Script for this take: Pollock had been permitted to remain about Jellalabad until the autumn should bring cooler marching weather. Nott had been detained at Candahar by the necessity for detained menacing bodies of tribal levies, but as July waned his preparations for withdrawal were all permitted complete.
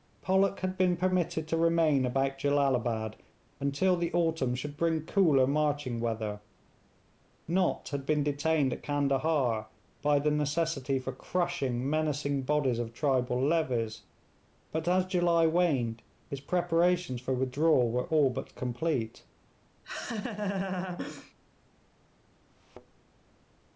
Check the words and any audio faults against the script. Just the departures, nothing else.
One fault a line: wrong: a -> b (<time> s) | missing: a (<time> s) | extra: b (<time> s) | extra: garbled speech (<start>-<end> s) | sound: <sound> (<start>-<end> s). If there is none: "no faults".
wrong: detained -> crushing (11.1 s)
wrong: permitted -> but (18.3 s)
sound: laugh (19.8-21.3 s)
sound: thud (22.5-23.0 s)